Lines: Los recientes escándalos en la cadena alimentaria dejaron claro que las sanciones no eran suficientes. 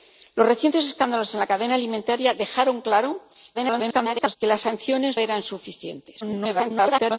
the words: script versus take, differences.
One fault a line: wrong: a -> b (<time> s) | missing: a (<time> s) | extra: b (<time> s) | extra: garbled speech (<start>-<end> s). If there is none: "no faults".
extra: garbled speech (3.5-4.4 s)
missing: no (5.2 s)
extra: garbled speech (6.2-7.2 s)